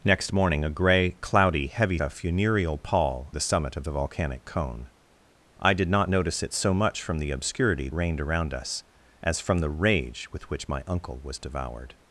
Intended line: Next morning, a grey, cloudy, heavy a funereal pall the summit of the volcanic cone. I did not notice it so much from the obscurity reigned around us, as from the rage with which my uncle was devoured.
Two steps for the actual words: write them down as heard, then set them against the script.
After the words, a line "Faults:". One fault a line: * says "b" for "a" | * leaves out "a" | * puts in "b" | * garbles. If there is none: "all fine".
Next morning, a grey, cloudy, heavy a funereal pall the summit of the volcanic cone. I did not notice it so much from the obscurity reigned around us, as from the rage with which my uncle was devoured.
Faults:
all fine